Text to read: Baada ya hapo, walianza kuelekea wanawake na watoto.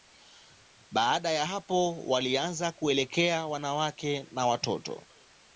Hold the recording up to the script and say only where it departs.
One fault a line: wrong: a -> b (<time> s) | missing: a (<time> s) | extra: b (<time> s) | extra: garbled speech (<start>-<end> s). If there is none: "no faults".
no faults